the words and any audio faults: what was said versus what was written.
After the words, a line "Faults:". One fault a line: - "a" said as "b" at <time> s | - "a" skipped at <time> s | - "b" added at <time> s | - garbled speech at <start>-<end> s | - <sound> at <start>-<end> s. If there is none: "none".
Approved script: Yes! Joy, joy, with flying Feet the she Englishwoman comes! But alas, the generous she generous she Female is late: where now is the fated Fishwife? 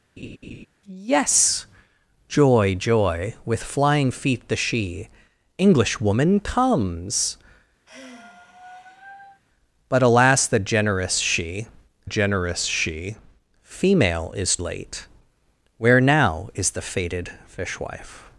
Yes! Joy, joy, with flying Feet the she Englishwoman comes! But alas, the generous she generous she Female is late: where now is the fated Fishwife?
Faults:
- laugh at 0.2-0.7 s
- sigh at 7.9-9.4 s